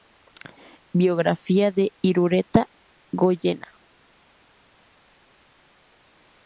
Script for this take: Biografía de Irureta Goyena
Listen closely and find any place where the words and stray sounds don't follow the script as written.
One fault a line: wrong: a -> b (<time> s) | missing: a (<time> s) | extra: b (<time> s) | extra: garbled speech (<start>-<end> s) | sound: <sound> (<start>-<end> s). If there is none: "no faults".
no faults